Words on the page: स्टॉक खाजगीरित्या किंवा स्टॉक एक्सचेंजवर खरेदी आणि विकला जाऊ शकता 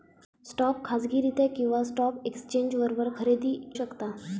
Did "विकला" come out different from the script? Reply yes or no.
yes